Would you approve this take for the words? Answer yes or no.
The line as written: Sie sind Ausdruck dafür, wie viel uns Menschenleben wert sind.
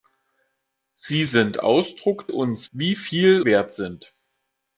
no